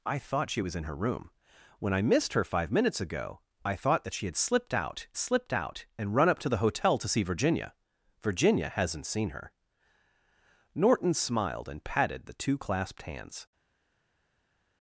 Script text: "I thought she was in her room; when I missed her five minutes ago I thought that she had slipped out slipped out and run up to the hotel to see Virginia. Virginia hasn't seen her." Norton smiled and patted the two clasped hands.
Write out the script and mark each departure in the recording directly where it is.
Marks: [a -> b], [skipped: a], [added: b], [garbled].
"I thought she was in her room; when I missed her five minutes ago I thought that she had slipped out slipped out and run up to the hotel to see Virginia. Virginia hasn't seen her." Norton smiled and patted the two clasped hands.